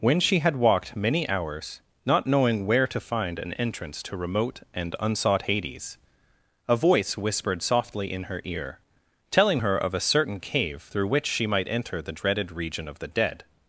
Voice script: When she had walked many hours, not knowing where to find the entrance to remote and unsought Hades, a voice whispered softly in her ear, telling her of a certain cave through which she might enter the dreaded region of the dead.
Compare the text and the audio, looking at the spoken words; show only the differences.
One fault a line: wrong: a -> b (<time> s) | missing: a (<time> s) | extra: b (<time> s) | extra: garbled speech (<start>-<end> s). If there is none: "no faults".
wrong: the -> an (3.4 s)